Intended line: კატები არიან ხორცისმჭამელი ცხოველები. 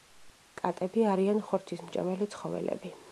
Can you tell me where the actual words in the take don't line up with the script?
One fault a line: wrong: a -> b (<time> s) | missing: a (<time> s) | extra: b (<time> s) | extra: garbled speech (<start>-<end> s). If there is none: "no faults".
no faults